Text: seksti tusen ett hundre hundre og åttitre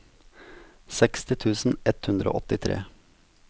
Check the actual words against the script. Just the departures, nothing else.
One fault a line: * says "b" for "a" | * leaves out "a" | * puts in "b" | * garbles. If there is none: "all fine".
* leaves out "hundre"